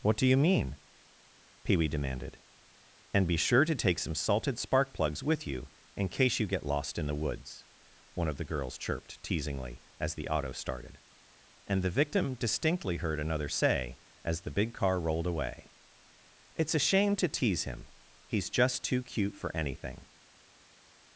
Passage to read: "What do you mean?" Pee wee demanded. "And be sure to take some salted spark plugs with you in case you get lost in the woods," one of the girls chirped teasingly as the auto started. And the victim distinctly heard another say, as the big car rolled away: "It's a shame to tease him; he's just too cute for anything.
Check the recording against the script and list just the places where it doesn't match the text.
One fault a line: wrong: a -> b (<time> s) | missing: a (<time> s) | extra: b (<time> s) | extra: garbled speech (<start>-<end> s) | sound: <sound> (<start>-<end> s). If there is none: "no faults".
no faults